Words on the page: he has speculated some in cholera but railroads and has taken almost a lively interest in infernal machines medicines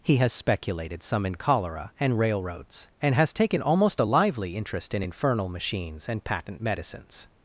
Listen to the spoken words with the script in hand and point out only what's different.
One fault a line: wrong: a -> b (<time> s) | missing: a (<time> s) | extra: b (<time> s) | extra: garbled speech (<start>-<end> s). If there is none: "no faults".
wrong: but -> and (2.0 s)
extra: and patent (6.1 s)